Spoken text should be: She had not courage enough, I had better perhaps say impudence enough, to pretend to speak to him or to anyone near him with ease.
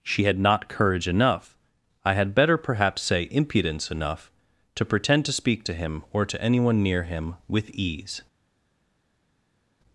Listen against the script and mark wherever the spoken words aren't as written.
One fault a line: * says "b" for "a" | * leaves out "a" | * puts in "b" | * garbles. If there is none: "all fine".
all fine